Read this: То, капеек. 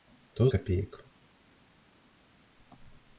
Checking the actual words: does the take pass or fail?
pass